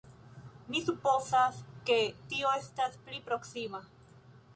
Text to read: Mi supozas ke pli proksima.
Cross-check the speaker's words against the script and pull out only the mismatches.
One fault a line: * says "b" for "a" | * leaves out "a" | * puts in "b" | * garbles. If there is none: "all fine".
* puts in "tio estas"